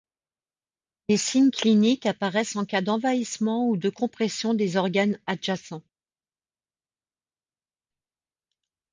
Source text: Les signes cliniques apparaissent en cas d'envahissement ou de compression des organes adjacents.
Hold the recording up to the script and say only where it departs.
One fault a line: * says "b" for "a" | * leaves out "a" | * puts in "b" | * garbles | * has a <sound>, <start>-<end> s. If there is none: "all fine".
all fine